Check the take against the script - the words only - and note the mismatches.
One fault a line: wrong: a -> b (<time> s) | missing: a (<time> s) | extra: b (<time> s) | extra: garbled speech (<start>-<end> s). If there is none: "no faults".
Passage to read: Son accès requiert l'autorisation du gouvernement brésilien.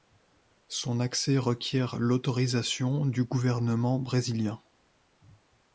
no faults